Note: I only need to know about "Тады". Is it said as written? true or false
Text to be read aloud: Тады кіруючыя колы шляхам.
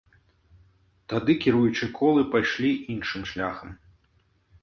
true